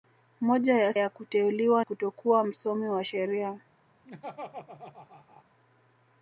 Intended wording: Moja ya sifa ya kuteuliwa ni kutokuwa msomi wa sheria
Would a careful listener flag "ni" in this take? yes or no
yes